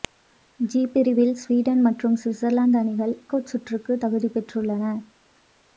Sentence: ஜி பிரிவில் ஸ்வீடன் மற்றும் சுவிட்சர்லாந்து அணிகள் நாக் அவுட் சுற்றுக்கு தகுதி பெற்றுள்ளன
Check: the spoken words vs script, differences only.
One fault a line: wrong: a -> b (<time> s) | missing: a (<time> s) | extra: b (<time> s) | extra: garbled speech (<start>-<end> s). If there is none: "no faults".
missing: நாக் (3.1 s)